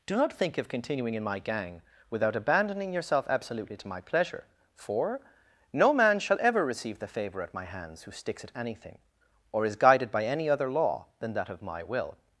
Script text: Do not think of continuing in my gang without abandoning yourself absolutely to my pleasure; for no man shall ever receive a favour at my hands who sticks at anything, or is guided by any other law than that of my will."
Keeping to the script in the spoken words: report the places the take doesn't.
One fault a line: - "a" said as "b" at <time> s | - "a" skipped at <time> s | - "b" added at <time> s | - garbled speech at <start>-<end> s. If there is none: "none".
- "a" said as "the" at 7.0 s